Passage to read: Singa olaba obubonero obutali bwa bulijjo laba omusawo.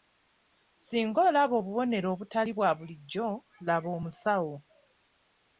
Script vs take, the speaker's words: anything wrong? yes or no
no